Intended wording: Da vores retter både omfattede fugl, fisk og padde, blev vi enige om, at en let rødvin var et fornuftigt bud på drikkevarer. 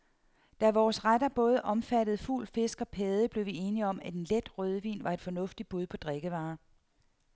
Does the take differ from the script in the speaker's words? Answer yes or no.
no